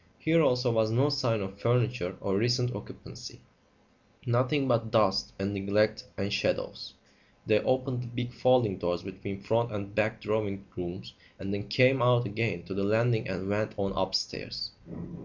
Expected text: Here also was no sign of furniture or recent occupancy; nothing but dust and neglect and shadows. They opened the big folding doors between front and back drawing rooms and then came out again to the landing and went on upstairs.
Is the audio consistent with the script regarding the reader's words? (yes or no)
yes